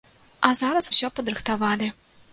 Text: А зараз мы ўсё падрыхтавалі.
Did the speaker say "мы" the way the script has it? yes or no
no